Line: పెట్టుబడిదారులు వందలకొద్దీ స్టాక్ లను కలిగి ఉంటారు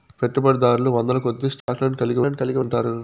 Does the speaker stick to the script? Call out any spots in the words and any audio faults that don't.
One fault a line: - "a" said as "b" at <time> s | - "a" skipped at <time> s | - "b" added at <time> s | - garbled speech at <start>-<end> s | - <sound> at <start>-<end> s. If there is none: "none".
- dropout at 1.6-1.7 s
- "లను కలిగి" added at 2.2 s